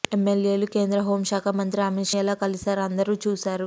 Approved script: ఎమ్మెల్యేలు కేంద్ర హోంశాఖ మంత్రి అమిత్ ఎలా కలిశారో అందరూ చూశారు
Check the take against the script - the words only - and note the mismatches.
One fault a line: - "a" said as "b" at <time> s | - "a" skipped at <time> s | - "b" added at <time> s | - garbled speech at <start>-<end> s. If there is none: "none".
none